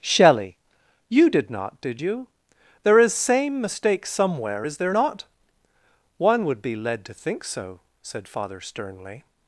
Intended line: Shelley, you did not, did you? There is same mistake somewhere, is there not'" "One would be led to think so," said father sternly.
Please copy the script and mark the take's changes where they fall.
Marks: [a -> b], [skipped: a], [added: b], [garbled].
Shelley, you did not, did you? There is same mistake somewhere, is there not'" "One would be led to think so," said father sternly.